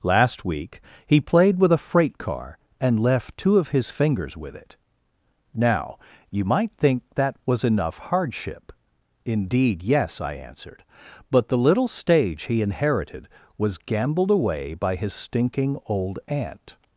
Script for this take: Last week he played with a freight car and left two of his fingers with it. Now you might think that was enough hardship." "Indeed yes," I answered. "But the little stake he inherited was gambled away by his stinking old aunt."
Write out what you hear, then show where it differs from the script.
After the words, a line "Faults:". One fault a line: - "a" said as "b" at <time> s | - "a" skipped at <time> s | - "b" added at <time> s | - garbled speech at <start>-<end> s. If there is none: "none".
Last week he played with a freight car and left two of his fingers with it. Now you might think that was enough hardship." "Indeed yes," I answered. "But the little stage he inherited was gambled away by his stinking old aunt."
Faults:
- "stake" said as "stage" at 11.9 s